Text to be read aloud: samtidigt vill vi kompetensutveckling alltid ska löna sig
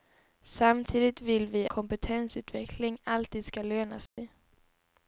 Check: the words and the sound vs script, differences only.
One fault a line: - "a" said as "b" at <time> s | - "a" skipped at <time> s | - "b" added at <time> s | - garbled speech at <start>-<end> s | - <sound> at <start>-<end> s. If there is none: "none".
- dropout at 4.1-4.2 s